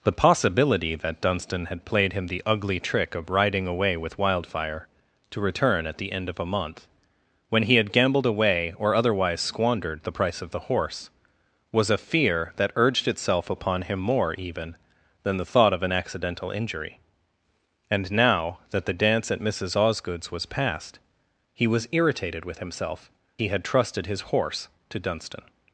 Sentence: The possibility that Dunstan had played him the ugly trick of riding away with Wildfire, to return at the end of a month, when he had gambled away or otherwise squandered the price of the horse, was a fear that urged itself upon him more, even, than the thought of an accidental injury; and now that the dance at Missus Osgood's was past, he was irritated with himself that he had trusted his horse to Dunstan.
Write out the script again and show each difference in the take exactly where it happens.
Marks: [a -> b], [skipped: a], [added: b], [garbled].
The possibility that Dunstan had played him the ugly trick of riding away with Wildfire, to return at the end of a month, when he had gambled away or otherwise squandered the price of the horse, was a fear that urged itself upon him more, even, than the thought of an accidental injury; and now that the dance at Missus Osgood's was past, he was irritated with himself [skipped: that] he had trusted his horse to Dunstan.